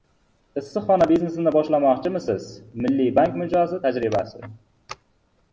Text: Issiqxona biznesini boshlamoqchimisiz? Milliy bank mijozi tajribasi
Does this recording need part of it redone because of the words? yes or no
no